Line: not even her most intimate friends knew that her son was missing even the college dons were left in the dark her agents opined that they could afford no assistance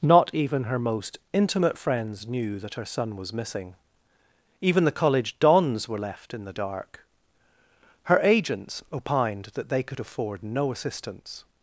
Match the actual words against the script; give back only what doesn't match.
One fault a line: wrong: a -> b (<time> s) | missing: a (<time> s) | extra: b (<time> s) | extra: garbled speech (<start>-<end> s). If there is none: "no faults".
no faults